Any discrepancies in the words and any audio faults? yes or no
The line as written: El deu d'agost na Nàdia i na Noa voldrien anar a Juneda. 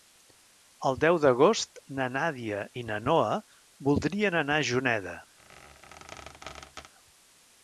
yes